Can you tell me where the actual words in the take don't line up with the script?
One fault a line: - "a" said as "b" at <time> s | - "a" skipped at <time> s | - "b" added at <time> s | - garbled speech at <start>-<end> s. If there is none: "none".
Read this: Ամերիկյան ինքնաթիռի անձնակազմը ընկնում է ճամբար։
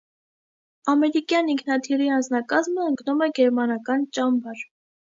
- "գերմանական" added at 3.4 s